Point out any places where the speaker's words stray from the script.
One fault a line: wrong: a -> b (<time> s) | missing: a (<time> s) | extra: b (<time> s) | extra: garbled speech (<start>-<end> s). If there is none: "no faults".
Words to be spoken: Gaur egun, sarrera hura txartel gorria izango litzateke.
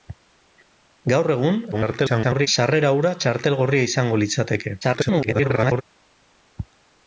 extra: garbled speech (1.7-2.5 s)
extra: garbled speech (4.8-5.8 s)